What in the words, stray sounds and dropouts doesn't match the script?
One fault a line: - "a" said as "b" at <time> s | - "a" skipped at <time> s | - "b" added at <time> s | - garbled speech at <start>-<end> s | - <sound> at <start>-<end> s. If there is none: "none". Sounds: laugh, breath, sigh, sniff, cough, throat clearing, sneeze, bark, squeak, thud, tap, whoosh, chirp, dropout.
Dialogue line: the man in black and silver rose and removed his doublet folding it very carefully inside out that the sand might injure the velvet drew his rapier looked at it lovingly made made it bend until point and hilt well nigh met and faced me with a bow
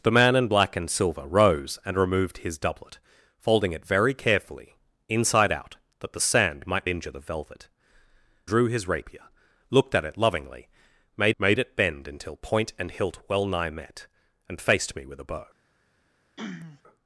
- throat clearing at 16.4-16.8 s